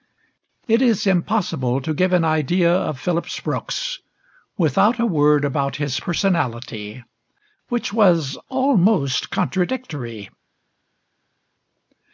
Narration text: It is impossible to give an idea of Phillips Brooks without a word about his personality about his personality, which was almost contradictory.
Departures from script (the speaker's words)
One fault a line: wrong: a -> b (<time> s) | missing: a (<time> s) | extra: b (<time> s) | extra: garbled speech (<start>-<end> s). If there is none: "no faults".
missing: about his personality (7.0 s)